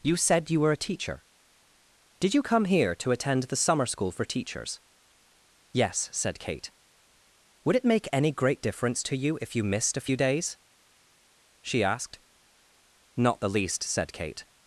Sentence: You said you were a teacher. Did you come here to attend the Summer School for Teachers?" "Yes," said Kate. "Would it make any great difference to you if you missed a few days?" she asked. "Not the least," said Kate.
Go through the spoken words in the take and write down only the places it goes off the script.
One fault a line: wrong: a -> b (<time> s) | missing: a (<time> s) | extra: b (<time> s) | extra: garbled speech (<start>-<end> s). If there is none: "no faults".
no faults